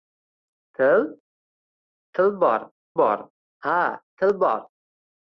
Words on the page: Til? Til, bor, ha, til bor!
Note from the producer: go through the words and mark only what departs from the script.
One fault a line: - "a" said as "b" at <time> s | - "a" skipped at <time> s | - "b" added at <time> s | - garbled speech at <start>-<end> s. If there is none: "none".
- "bor" added at 3.0 s